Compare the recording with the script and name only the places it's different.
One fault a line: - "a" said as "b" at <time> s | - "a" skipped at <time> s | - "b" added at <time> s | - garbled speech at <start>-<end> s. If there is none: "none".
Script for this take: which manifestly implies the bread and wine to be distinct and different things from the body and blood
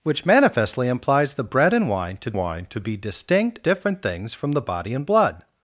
- "wine to" added at 2.3 s
- "and" skipped at 3.6 s